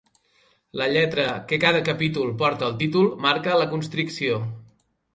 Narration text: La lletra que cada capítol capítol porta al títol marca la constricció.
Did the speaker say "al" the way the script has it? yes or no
yes